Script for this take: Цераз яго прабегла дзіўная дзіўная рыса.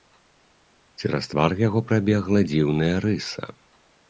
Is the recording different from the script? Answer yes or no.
yes